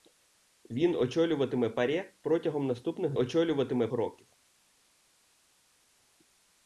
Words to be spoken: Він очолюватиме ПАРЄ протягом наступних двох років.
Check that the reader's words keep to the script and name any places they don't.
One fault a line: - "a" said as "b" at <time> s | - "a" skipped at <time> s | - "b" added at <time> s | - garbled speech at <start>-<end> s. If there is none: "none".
- "двох" said as "очолюватиме" at 3.1 s